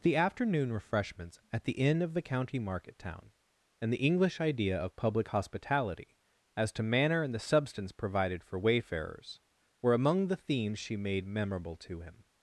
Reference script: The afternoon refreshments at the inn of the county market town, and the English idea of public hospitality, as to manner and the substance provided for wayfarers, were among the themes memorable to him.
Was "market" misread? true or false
false